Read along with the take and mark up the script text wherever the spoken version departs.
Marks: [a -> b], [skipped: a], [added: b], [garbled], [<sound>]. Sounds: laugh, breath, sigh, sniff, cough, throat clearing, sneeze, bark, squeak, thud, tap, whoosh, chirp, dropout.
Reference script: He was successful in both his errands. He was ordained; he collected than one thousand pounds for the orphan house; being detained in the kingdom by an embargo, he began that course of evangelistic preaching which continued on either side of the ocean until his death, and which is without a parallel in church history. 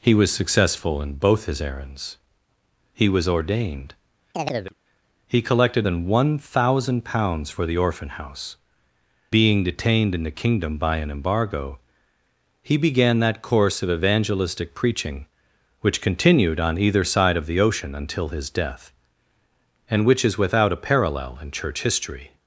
He was successful in both his errands. He was ordained; [chirp] he collected than one thousand pounds for the orphan house; being detained in the kingdom by an embargo, he began that course of evangelistic preaching which continued on either side of the ocean until his death, and which is without a parallel in church history.